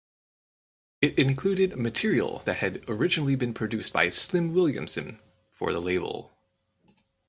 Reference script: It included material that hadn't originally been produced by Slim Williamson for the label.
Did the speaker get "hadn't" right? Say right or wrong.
wrong